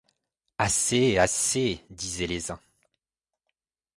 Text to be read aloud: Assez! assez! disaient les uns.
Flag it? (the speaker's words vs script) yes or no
no